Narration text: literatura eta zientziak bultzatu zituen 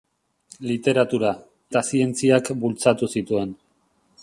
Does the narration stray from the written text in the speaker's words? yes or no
no